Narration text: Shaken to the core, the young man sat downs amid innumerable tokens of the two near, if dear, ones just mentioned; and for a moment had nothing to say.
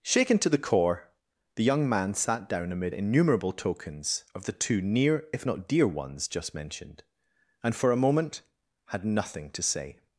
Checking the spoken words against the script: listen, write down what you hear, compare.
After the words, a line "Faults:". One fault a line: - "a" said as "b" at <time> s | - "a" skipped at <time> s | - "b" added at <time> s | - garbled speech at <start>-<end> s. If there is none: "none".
Shaken to the core, the young man sat down amid innumerable tokens of the two near, if not dear, ones just mentioned; and for a moment had nothing to say.
Faults:
- "downs" said as "down" at 2.5 s
- "not" added at 5.4 s